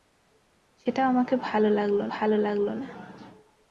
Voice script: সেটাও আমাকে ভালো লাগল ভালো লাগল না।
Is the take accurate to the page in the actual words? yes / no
yes